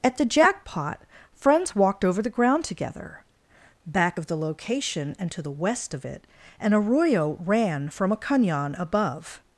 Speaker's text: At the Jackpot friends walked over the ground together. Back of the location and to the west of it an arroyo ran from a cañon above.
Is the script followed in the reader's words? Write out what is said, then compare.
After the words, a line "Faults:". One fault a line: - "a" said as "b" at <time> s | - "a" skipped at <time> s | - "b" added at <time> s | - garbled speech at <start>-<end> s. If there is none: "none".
At the Jackpot friends walked over the ground together. Back of the location and to the west of it an arroyo ran from a cañon above.
Faults:
none